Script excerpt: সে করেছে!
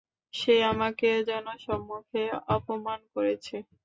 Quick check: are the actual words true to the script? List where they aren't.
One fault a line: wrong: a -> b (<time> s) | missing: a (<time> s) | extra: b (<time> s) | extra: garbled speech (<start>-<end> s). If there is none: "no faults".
extra: আমাকে জনসম্মুখে অপমান (0.7 s)